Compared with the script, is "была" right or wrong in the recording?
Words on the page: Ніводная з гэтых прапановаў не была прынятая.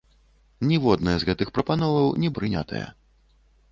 wrong